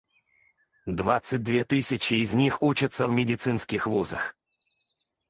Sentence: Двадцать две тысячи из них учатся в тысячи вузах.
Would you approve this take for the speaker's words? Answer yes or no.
no